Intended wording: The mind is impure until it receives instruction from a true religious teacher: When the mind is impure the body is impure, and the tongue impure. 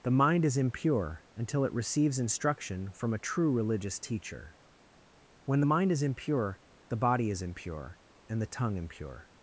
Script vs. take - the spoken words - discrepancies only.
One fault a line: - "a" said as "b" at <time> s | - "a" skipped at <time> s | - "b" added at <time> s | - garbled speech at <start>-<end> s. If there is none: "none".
none